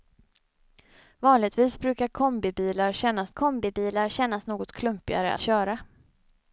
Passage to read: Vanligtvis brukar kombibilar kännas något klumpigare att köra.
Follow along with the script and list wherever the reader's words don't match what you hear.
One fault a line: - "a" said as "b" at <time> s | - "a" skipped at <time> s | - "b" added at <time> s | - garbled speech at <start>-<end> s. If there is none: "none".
- "kombibilar kännas" added at 3.3 s
- "att" skipped at 5.3 s